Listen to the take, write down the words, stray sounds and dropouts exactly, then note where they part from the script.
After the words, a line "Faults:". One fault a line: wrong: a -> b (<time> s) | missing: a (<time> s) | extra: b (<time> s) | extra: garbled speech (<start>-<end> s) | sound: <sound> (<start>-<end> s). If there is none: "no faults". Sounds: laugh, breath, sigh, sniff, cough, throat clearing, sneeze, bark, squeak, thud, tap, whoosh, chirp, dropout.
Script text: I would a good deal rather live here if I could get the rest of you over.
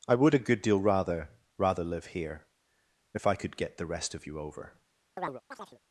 I would a good deal rather rather live here if I could get the rest of you over.
Faults:
extra: rather (1.6 s)
sound: chirp (5.2-5.8 s)